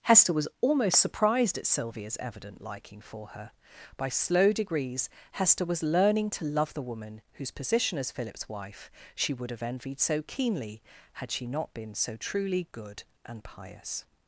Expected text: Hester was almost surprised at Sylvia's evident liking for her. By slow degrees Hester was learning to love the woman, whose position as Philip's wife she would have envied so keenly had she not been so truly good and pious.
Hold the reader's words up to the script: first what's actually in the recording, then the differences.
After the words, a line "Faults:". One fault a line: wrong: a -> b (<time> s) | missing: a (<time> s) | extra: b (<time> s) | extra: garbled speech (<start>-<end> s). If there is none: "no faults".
Hester was almost surprised at Sylvia's evident liking for her. By slow degrees Hester was learning to love the woman, whose position as Philip's wife she would have envied so keenly had she not been so truly good and pious.
Faults:
no faults